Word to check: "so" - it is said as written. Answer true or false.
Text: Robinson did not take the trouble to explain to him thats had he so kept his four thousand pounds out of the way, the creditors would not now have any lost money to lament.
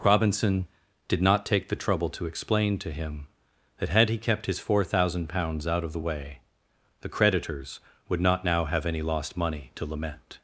false